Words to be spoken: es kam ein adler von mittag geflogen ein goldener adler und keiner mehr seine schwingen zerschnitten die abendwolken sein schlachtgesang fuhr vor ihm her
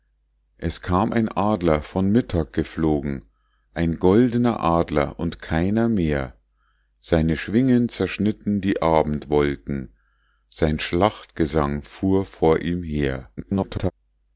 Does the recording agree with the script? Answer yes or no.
no